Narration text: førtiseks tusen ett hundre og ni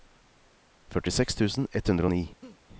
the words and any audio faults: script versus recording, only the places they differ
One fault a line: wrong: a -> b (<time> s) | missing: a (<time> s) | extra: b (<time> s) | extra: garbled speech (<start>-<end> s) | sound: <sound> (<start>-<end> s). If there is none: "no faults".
sound: laugh (2.4-2.6 s)